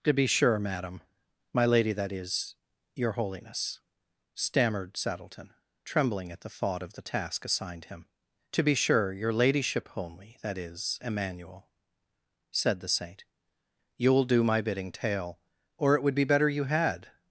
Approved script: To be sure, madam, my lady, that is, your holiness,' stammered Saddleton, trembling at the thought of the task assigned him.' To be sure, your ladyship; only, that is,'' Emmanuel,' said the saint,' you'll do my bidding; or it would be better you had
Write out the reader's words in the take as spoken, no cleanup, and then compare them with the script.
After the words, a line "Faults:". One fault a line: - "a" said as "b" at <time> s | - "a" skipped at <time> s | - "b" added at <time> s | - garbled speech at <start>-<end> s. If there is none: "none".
To be sure, madam, my lady, that is, your holiness,' stammered Saddleton, trembling at the thought of the task assigned him.' To be sure, your ladyship; only, that is,'' Emmanuel,' said the saint,' you'll do my bidding; tale or it would be better you had
Faults:
- "tale" added at 14.9 s